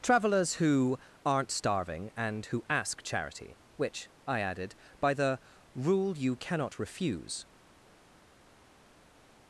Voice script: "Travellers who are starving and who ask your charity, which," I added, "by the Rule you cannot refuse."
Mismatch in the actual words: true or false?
true